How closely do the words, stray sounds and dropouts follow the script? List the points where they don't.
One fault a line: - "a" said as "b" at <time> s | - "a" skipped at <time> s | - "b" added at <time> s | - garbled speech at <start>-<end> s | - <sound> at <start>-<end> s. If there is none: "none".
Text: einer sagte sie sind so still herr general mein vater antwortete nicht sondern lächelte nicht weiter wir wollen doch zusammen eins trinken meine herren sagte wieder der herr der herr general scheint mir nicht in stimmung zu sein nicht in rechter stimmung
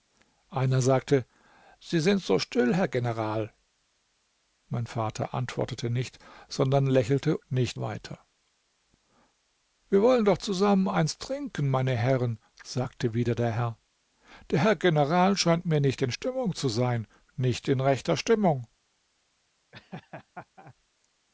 - laugh at 19.7-20.7 s